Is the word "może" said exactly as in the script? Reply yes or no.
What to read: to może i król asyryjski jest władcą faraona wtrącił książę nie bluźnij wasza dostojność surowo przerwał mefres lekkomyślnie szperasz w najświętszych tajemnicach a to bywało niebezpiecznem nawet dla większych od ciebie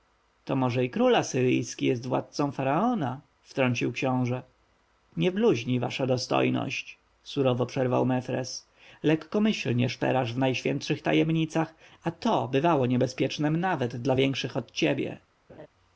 yes